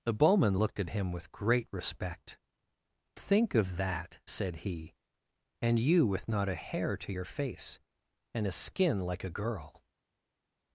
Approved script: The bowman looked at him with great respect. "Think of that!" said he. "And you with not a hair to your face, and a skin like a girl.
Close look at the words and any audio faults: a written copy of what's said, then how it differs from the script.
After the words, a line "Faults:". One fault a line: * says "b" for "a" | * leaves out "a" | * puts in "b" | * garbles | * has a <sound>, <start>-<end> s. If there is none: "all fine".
The bowman looked at him with great respect. "Think of that!" said he. "And you with not a hair to your face, and a skin like a girl.
Faults:
all fine